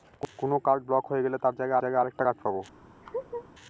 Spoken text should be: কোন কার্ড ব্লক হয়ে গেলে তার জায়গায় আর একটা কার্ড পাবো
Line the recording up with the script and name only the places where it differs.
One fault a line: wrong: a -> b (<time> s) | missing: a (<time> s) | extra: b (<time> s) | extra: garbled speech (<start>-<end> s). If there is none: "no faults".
extra: জায়গায় (1.8 s)